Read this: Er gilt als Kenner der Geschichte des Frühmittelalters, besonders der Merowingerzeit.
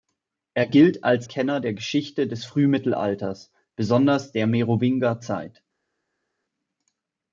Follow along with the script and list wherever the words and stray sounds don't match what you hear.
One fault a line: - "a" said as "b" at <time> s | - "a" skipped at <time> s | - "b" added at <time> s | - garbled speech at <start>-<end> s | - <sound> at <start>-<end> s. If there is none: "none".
none